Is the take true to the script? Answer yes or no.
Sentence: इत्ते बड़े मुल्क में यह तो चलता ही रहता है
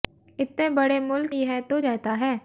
no